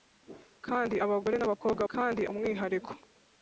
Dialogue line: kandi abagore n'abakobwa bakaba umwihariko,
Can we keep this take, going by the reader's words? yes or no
no